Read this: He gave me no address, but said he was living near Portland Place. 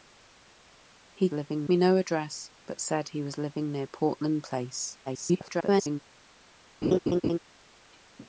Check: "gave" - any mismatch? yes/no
yes